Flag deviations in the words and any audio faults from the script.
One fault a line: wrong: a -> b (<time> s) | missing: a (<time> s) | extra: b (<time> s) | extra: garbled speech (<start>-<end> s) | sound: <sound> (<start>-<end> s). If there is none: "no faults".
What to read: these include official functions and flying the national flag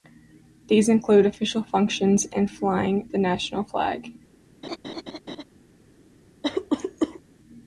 sound: laugh (4.6-5.4 s)
sound: cough (6.4-7.2 s)